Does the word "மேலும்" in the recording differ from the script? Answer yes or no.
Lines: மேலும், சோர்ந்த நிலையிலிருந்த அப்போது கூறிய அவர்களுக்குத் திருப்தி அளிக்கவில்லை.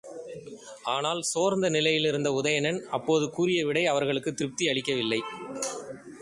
yes